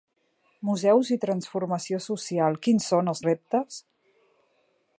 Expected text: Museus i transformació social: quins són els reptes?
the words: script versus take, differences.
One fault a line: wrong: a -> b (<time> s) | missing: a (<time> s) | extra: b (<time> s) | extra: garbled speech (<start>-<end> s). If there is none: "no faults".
no faults